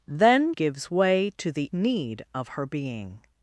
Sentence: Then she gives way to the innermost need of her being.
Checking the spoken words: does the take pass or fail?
fail